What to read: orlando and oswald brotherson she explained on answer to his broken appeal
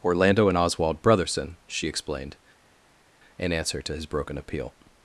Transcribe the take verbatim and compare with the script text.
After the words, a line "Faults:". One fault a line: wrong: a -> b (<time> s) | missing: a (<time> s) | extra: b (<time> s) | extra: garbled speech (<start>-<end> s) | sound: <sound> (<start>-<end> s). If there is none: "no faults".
orlando and oswald brotherson she explained in answer to his broken appeal
Faults:
wrong: on -> in (3.4 s)